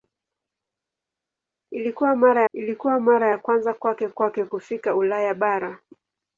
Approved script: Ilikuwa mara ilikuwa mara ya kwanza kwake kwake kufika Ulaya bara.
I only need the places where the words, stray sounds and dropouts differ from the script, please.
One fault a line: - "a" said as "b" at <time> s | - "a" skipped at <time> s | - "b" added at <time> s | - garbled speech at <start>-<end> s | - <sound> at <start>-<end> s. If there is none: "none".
none